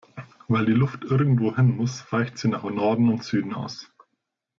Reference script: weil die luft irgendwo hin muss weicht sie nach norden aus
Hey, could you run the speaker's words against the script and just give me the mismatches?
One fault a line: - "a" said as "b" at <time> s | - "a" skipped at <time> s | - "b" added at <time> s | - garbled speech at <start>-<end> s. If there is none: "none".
- "und süden" added at 3.1 s